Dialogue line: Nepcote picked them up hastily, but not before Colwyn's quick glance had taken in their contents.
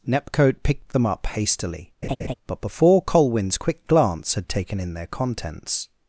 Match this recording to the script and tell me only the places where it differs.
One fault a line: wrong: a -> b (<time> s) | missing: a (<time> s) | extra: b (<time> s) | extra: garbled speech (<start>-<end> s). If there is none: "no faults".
missing: not (2.6 s)